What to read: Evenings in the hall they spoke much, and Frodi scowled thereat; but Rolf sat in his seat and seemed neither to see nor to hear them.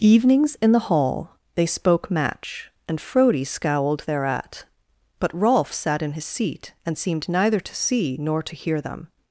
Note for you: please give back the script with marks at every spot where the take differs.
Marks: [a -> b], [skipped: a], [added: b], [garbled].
Evenings in the hall they spoke [much, -> match] and Frodi scowled thereat; but Rolf sat in his seat and seemed neither to see nor to hear them.